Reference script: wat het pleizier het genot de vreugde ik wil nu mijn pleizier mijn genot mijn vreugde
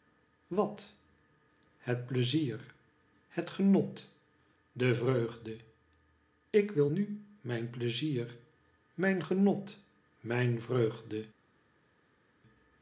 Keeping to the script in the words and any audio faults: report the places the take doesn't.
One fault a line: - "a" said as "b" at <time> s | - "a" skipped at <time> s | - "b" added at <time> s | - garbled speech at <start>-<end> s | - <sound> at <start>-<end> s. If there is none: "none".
none